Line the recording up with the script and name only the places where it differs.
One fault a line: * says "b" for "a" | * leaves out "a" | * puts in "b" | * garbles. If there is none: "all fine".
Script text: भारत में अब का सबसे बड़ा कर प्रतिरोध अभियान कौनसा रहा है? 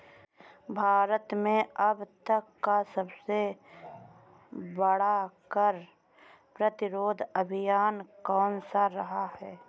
* puts in "तक"